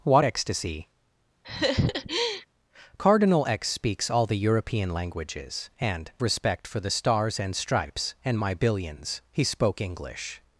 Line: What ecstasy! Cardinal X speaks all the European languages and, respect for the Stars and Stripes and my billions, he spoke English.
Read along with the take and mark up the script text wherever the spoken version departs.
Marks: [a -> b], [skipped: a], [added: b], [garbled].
What ecstasy! Cardinal X speaks all the European languages and, respect for the Stars and Stripes and my billions, he spoke English.